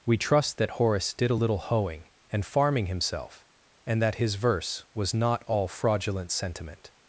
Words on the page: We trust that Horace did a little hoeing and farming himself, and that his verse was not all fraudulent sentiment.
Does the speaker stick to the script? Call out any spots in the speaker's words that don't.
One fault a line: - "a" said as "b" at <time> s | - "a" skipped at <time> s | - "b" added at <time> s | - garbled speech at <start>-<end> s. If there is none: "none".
none